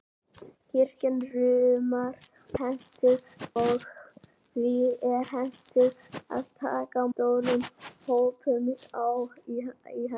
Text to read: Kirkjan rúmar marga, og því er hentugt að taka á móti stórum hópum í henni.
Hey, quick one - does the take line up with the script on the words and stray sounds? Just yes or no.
no